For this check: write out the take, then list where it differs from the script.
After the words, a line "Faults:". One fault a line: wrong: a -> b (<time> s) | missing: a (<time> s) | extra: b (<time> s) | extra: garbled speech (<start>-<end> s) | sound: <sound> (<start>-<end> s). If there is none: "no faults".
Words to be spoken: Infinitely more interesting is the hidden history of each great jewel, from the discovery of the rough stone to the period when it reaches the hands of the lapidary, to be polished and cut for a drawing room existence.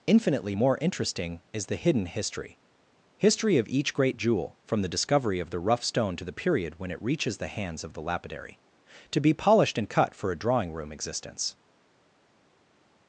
Infinitely more interesting is the hidden history history of each great jewel, from the discovery of the rough stone to the period when it reaches the hands of the lapidary, to be polished and cut for a drawing room existence.
Faults:
extra: history (3.2 s)